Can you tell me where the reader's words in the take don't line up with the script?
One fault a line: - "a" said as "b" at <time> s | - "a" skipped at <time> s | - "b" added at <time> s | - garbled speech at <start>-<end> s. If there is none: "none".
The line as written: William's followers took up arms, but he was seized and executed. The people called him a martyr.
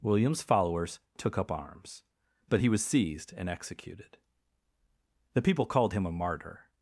none